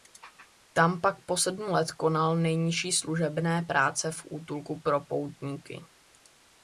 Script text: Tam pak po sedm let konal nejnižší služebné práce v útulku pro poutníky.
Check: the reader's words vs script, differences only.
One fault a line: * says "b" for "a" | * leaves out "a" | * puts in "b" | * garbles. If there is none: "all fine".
all fine